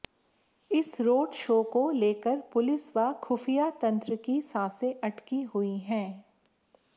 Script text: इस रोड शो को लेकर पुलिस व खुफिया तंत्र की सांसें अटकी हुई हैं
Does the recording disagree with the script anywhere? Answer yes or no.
no